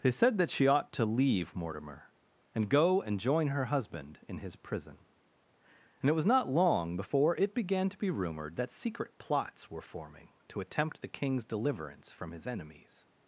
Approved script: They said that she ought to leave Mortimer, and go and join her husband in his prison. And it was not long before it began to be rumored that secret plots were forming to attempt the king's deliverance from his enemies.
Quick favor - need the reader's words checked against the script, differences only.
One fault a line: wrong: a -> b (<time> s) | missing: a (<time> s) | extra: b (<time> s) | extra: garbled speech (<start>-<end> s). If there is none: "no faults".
no faults